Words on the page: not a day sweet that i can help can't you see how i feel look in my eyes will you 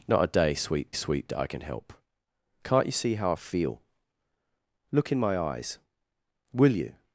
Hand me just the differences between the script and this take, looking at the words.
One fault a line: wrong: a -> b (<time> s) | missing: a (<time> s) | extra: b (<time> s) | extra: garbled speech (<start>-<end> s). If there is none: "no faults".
extra: sweet (0.9 s)